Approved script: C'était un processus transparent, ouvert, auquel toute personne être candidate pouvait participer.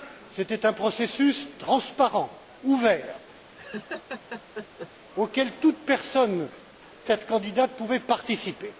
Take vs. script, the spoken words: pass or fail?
pass